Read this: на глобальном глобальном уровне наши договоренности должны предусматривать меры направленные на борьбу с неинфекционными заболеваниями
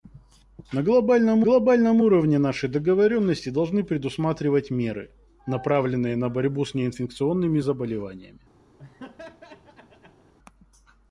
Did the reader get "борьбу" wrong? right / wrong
right